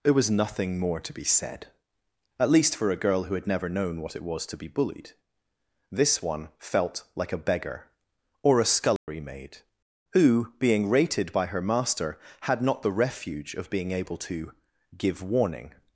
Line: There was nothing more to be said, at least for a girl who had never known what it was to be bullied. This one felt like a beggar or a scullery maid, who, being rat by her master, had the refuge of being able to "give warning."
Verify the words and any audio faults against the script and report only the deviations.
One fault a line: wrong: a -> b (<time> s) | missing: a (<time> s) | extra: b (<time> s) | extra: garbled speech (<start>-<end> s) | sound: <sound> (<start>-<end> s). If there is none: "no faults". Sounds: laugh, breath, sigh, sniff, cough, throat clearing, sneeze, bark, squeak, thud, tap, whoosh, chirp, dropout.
sound: dropout (9.0-9.1 s)
wrong: rat -> rated (10.9 s)
extra: not (12.6 s)